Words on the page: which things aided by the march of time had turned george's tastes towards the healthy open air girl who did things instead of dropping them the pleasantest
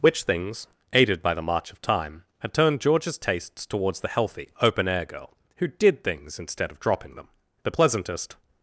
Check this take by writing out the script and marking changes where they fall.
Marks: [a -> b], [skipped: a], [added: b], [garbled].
which things aided by the march of time had turned george's tastes towards the healthy open air girl who did things instead of dropping them the pleasantest